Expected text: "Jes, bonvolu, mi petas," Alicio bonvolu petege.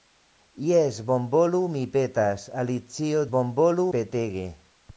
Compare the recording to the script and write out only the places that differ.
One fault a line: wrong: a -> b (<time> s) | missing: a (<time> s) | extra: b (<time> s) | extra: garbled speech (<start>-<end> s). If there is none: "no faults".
no faults